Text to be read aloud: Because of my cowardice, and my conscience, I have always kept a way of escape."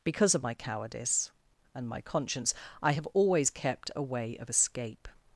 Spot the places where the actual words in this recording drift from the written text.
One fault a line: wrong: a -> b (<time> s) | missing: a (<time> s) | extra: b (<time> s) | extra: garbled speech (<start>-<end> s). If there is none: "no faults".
no faults